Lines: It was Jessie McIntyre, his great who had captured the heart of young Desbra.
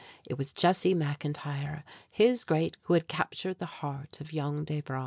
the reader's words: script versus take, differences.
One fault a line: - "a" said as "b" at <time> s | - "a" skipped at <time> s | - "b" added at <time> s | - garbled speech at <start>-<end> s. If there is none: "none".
none